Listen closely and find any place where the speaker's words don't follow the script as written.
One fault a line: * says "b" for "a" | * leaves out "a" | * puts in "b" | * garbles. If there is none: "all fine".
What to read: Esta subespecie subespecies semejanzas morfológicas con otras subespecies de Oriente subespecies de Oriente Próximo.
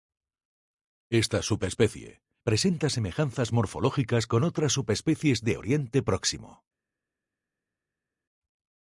* says "presenta" for "subespecies"
* leaves out "subespecies de Oriente"